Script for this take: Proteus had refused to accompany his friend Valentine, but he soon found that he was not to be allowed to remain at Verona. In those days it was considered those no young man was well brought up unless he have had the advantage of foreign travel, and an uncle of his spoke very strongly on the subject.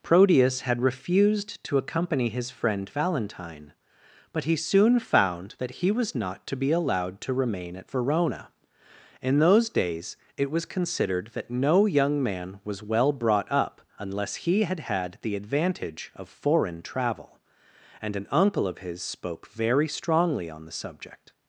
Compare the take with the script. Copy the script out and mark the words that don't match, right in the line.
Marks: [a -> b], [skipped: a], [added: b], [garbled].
Proteus had refused to accompany his friend Valentine, but he soon found that he was not to be allowed to remain at Verona. In those days it was considered [those -> that] no young man was well brought up unless he [have -> had] had the advantage of foreign travel, and an uncle of his spoke very strongly on the subject.